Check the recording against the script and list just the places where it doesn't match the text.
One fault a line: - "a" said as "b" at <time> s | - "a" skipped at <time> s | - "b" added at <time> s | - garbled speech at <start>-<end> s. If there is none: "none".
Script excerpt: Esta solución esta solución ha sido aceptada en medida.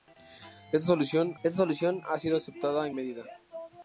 none